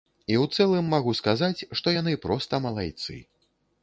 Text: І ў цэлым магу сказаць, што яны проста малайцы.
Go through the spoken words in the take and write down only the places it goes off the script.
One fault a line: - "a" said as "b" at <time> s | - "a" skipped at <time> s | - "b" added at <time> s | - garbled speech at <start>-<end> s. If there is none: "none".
none